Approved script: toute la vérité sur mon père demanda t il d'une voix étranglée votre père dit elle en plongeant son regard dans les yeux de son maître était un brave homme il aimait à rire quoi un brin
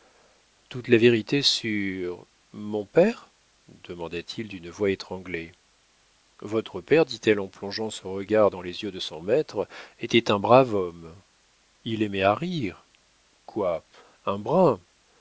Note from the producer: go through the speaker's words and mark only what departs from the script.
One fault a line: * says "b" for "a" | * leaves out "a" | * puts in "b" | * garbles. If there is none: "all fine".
all fine